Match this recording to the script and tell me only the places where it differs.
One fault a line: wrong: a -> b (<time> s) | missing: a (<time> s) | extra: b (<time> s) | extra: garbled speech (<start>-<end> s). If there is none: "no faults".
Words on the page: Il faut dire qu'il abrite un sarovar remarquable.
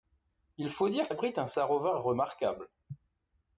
missing: qu'il (1.1 s)